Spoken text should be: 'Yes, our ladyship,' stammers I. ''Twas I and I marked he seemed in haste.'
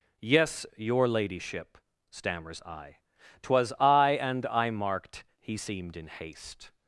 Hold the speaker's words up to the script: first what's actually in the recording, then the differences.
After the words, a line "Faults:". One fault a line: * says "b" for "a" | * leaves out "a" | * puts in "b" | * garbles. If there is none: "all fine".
'Yes, your ladyship,' stammers I. ''Twas I and I marked he seemed in haste.'
Faults:
* says "your" for "our"